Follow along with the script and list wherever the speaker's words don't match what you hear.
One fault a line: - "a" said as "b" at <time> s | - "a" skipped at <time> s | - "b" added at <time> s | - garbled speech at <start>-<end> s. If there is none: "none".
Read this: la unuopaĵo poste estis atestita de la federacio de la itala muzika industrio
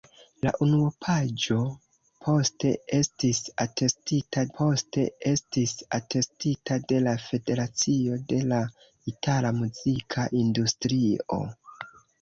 - "poste estis atestita" added at 4.6 s